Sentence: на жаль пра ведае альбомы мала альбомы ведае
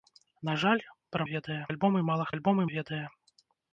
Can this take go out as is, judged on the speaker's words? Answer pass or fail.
pass